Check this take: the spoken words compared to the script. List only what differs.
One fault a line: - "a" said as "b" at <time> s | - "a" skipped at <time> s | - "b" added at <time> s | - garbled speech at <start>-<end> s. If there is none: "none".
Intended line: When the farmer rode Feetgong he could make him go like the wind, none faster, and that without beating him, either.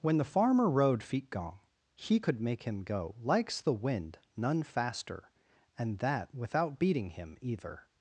- "like" said as "likes" at 3.2 s